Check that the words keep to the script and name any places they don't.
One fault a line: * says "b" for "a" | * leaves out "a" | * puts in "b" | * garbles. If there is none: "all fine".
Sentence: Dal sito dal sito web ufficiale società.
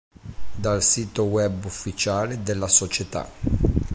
* leaves out "dal sito"
* puts in "della"